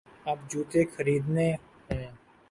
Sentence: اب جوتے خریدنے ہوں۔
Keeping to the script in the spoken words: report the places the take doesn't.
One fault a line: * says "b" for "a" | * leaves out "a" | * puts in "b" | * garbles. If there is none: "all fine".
all fine